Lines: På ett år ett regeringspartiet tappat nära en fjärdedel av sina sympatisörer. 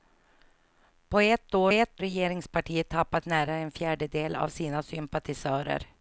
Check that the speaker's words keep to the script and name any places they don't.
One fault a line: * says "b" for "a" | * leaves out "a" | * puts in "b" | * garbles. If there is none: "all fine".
all fine